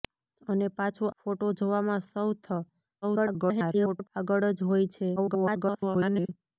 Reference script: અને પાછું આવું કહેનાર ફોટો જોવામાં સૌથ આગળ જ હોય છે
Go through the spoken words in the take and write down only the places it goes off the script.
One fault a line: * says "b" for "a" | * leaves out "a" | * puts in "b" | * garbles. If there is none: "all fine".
* leaves out "આવું કહેનાર"
* garbles
* garbles